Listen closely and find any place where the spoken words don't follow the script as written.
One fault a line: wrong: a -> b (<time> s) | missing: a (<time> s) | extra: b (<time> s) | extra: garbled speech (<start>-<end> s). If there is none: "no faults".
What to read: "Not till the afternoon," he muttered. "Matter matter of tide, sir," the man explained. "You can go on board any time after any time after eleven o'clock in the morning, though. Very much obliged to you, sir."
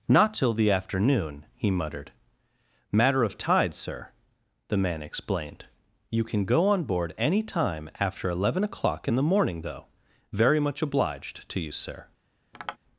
missing: matter (3.2 s)
missing: any time after (8.3 s)